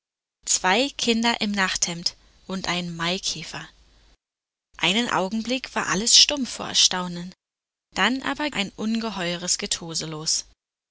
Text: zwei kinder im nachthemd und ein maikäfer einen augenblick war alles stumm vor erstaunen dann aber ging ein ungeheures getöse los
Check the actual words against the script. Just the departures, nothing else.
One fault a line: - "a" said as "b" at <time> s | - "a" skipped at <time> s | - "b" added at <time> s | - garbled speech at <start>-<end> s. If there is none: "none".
- "ging" skipped at 8.5 s